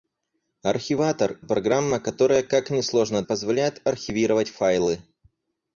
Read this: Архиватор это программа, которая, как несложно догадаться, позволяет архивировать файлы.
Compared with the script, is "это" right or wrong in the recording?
wrong